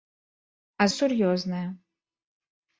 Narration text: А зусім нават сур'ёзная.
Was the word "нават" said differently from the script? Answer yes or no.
yes